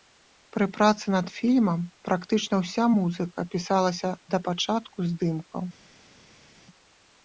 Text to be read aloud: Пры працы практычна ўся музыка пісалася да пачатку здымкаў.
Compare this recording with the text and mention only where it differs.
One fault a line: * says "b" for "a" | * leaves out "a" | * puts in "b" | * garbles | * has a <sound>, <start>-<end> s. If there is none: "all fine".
* puts in "над фільмам"